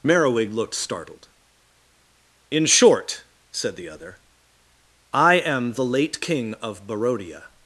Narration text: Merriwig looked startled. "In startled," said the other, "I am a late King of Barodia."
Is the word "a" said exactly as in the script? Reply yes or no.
no